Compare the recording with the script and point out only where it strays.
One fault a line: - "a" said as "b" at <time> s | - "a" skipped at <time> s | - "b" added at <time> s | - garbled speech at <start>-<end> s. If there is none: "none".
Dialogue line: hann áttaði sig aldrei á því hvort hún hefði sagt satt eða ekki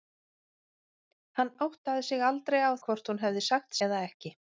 - "því" skipped at 2.7 s
- "satt" skipped at 3.8 s